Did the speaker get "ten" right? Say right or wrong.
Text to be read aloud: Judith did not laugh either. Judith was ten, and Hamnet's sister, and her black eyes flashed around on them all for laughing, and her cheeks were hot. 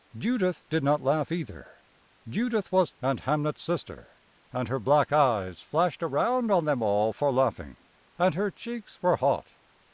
wrong